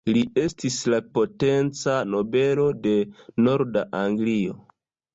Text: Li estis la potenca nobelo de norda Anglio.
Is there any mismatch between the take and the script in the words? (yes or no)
no